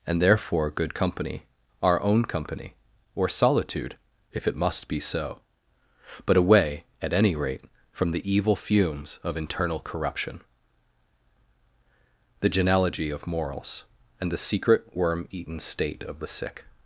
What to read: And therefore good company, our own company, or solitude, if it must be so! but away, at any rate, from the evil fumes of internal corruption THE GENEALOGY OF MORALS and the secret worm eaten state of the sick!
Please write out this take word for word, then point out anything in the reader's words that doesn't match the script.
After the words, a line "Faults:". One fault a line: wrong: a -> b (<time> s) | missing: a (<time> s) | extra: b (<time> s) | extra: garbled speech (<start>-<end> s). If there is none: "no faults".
And therefore good company, our own company, or solitude, if it must be so! but away, at any rate, from the evil fumes of internal corruption THE GENEALOGY OF MORALS and the secret worm eaten state of the sick!
Faults:
no faults